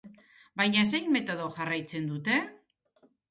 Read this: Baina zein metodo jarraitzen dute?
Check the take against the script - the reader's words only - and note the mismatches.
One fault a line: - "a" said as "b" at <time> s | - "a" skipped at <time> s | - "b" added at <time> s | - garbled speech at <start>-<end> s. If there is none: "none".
none